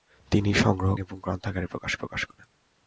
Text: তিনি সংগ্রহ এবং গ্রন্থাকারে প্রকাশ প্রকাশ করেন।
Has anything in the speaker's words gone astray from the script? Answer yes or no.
no